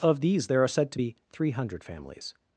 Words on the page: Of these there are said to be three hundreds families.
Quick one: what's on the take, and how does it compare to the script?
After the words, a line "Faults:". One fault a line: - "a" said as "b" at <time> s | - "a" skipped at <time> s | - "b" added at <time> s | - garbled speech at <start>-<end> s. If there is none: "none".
Of these there are said to be three hundred families.
Faults:
- "hundreds" said as "hundred" at 1.5 s